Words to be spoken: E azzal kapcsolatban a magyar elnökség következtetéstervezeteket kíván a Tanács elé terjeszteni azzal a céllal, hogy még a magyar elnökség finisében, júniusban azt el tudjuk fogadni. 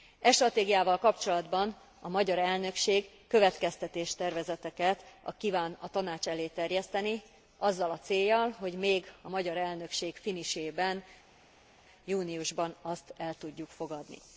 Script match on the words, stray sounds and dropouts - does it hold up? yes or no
no